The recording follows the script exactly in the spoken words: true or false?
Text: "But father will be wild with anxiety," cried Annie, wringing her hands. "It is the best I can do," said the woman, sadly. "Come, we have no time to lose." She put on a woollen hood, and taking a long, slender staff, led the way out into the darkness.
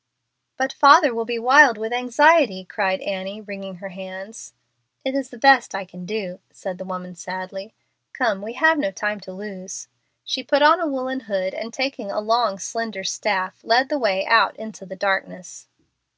true